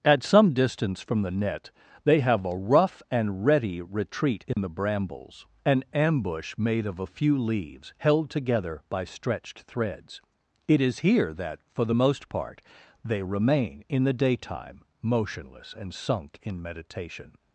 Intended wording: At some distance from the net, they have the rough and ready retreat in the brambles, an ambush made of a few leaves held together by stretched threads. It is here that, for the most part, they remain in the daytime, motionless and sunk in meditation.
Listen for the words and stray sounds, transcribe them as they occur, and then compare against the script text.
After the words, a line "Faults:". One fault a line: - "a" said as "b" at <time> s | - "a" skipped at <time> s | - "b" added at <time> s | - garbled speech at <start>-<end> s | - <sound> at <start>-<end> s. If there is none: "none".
At some distance from the net, they have a rough and ready retreat in the brambles, an ambush made of a few leaves held together by stretched threads. It is here that, for the most part, they remain in the daytime, motionless and sunk in meditation.
Faults:
- "the" said as "a" at 2.4 s
- dropout at 4.5-4.6 s